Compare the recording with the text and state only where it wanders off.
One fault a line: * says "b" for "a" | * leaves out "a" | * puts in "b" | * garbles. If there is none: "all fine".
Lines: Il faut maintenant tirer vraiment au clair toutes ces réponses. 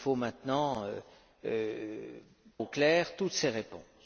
* leaves out "tirer vraiment"